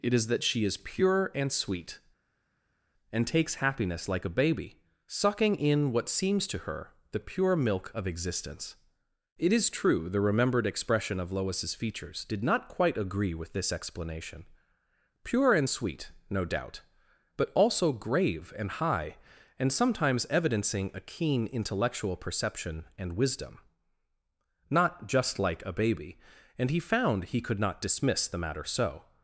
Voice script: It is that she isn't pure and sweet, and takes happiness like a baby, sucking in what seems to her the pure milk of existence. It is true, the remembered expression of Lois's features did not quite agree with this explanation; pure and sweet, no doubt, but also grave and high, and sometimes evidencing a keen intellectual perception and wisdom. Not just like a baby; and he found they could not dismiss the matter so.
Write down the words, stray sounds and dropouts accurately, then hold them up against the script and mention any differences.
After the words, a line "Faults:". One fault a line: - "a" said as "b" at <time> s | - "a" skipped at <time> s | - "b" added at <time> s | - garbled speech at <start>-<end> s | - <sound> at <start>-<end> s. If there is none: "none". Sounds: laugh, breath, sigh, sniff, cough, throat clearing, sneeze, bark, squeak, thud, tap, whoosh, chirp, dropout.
It is that she is pure and sweet, and takes happiness like a baby, sucking in what seems to her the pure milk of existence. It is true, the remembered expression of Lois's features did not quite agree with this explanation; pure and sweet, no doubt, but also grave and high, and sometimes evidencing a keen intellectual perception and wisdom. Not just like a baby; and he found he could not dismiss the matter so.
Faults:
- "isn't" said as "is" at 0.7 s
- "they" said as "he" at 27.3 s